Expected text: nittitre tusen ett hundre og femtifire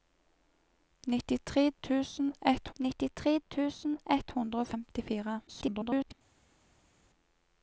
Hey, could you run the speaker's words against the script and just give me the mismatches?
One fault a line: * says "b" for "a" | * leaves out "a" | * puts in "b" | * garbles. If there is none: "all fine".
* puts in "nittitre tusen ett"
* garbles